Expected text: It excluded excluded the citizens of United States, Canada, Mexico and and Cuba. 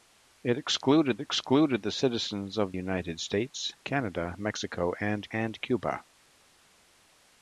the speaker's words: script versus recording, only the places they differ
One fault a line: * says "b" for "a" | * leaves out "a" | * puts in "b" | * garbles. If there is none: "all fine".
all fine